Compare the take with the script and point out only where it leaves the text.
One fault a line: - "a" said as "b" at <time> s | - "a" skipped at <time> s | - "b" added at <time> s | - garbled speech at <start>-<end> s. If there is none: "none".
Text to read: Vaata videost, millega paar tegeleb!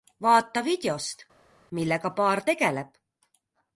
none